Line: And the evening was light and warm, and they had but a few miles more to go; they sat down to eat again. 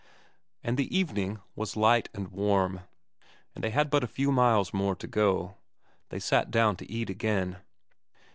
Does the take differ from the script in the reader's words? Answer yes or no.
no